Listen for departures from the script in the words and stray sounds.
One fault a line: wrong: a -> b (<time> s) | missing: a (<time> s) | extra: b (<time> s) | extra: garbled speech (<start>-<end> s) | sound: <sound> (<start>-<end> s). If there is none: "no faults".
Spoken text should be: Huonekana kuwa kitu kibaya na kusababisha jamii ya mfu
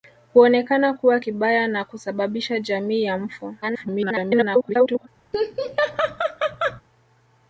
missing: kitu (1.2 s)
extra: garbled speech (3.6-5.1 s)
sound: laugh (5.3-6.8 s)